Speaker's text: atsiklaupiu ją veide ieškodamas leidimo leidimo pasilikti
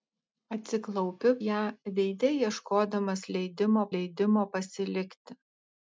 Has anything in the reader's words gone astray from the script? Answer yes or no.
no